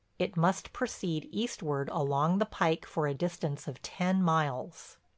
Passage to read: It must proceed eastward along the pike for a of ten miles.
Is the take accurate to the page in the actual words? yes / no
no